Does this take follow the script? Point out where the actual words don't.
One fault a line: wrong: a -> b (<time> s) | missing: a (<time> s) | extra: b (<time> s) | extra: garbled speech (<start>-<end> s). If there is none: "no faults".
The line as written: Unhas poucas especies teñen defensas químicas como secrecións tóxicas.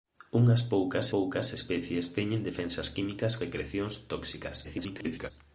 extra: poucas (1.1 s)
missing: como (3.3 s)
extra: garbled speech (4.6-5.3 s)